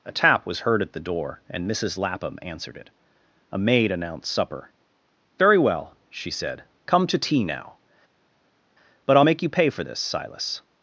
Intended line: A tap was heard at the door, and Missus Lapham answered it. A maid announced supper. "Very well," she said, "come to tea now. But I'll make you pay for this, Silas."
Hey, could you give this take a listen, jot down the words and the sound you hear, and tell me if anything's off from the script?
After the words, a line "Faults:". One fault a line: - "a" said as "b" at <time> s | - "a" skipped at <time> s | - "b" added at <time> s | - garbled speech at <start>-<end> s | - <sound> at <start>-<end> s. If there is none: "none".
A tap was heard at the door, and Missus Lapham answered it. A maid announced supper. "Very well," she said, "come to tea now. But I'll make you pay for this, Silas."
Faults:
none